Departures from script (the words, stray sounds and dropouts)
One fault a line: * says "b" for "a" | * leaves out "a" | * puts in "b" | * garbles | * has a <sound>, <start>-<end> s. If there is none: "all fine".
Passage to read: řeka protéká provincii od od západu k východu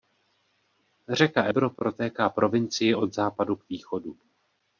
* puts in "ebro"
* leaves out "od"